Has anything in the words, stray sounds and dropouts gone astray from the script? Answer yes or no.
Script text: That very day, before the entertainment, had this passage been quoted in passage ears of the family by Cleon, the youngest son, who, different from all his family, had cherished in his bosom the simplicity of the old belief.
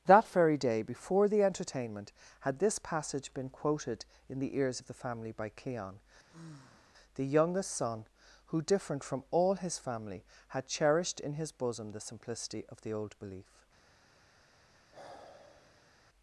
yes